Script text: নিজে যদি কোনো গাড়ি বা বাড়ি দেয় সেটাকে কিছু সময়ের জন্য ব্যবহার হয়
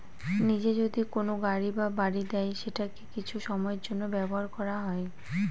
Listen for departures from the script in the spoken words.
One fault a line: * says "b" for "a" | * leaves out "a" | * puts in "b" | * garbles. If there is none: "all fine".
* puts in "করা"